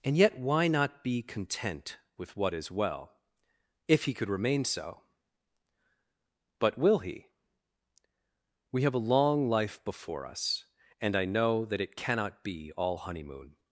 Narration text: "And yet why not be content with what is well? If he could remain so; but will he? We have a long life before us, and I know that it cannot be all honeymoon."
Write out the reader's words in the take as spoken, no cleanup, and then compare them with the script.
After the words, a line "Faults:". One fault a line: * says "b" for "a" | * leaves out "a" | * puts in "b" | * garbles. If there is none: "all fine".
"And yet why not be content with what is well? If he could remain so; but will he? We have a long life before us, and I know that it cannot be all honeymoon."
Faults:
all fine